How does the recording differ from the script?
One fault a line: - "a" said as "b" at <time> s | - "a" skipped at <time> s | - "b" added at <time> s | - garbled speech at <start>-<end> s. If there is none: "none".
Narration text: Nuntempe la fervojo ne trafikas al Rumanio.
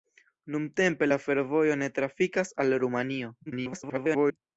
- garbled speech at 3.5-4.4 s